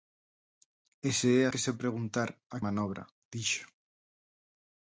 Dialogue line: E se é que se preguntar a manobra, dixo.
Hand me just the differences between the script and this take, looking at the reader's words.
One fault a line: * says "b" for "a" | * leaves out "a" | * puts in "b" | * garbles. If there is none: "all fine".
all fine